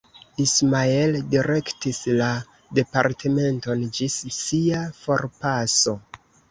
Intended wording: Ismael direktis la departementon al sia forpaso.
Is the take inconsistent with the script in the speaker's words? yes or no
yes